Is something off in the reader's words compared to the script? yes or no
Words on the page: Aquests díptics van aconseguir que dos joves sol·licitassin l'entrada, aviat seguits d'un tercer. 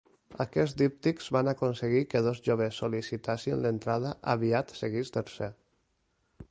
yes